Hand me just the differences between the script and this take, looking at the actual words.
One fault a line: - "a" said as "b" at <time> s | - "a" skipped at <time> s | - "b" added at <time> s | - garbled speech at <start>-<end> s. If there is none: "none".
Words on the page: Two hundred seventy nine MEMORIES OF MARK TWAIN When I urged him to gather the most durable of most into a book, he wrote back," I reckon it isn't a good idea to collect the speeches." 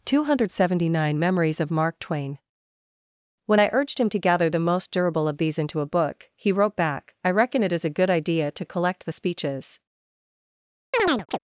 - "most" said as "these" at 5.4 s
- "isn't" said as "is" at 7.7 s